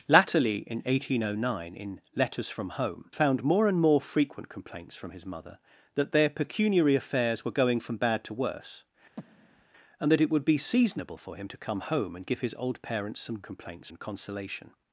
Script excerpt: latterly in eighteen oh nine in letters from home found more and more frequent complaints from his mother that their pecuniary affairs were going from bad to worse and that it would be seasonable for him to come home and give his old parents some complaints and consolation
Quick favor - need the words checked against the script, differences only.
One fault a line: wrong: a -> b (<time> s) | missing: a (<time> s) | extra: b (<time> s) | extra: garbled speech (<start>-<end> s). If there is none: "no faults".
no faults